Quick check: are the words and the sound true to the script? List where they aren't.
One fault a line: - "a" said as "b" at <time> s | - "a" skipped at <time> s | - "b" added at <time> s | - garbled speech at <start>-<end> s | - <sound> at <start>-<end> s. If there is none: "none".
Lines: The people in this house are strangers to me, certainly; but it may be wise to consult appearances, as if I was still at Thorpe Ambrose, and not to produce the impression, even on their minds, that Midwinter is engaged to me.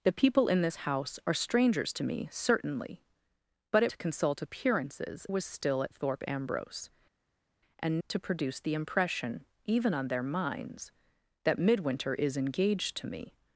- "may be wise" skipped at 3.9 s
- "as if I" skipped at 5.2 s
- "not" skipped at 8.0 s